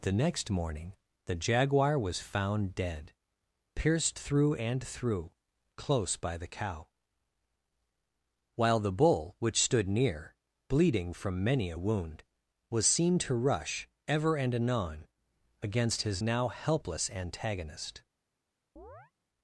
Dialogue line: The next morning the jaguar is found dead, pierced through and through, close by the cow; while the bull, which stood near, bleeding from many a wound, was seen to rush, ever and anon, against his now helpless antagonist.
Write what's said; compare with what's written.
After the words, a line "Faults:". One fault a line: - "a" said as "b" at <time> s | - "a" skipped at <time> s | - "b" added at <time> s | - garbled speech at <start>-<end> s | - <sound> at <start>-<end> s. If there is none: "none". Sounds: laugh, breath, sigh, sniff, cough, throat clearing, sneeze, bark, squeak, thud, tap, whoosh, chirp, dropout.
The next morning the jaguar was found dead, pierced through and through, close by the cow; while the bull, which stood near, bleeding from many a wound, was seen to rush, ever and anon, against his now helpless antagonist.
Faults:
- "is" said as "was" at 2.0 s
- chirp at 18.8-19.1 s